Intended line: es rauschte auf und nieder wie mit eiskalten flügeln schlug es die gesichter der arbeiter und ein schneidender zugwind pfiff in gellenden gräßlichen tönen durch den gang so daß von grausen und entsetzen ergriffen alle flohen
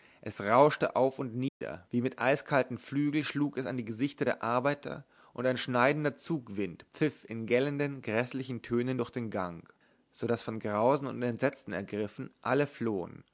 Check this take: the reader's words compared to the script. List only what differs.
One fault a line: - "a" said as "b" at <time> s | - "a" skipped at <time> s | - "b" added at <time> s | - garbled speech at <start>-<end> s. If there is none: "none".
- "an" added at 3.7 s